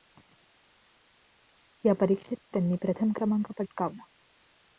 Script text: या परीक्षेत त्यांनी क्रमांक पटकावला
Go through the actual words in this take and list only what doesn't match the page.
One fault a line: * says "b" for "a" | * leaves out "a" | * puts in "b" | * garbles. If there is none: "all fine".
* puts in "प्रथम"